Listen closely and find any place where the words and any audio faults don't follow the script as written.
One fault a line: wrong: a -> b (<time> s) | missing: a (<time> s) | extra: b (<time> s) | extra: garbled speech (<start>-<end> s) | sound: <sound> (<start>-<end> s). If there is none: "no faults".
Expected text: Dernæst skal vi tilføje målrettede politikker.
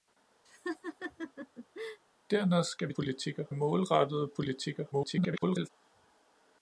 sound: laugh (0.5-2.0 s)
wrong: tilføje -> politikker (3.0 s)
extra: garbled speech (4.9-5.7 s)